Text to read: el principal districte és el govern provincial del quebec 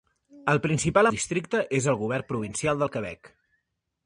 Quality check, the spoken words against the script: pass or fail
pass